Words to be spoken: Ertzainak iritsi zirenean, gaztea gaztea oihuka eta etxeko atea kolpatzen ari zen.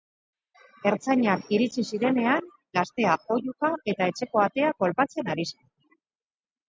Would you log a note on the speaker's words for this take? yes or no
yes